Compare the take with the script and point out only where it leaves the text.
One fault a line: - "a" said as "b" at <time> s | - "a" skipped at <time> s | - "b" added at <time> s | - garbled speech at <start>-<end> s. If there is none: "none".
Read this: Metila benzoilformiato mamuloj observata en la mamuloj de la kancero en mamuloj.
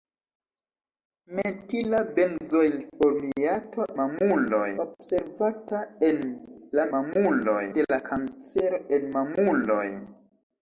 none